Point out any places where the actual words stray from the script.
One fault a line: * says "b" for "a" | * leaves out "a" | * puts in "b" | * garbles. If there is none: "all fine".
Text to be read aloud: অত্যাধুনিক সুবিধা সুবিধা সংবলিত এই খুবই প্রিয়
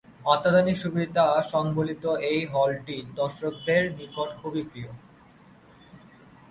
* leaves out "সুবিধা"
* puts in "হলটি দর্শকদের নিকট"